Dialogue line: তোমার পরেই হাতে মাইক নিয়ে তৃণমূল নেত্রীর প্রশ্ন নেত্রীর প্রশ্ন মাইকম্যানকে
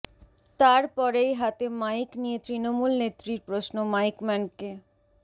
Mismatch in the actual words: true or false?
true